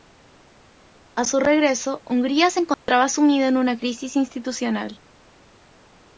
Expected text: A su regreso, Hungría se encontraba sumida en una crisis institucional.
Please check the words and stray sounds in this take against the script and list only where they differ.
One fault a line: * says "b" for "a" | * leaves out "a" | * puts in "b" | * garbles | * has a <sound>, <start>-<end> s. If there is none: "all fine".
* has a dropout, 2.7-2.9 s